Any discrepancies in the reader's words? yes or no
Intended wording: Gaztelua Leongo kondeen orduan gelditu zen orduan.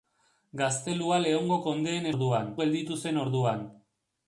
no